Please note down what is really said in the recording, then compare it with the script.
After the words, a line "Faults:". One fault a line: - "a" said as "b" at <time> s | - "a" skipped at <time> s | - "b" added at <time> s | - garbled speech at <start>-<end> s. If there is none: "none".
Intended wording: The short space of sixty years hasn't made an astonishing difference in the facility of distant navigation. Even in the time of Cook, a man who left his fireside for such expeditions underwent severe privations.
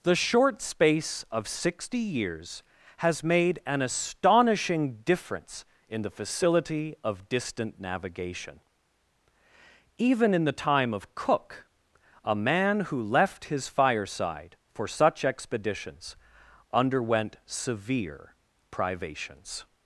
The short space of sixty years has made an astonishing difference in the facility of distant navigation. Even in the time of Cook, a man who left his fireside for such expeditions underwent severe privations.
Faults:
- "hasn't" said as "has" at 3.0 s